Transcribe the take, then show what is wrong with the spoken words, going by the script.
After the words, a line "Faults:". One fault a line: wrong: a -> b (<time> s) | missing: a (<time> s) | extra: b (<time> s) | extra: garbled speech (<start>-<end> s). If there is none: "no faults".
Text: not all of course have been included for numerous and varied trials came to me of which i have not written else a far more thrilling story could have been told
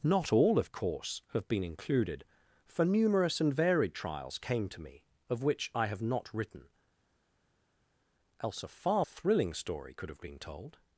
not all of course have been included for numerous and varied trials came to me of which i have not written else a far thrilling story could have been told
Faults:
missing: more (9.0 s)